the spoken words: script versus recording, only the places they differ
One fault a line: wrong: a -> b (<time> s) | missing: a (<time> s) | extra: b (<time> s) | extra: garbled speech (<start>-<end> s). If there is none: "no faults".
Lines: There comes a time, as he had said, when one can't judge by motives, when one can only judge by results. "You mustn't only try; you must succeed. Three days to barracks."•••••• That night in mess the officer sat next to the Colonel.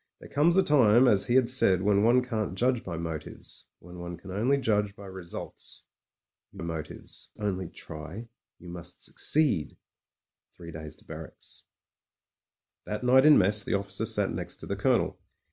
wrong: mustn't -> motives (6.6 s)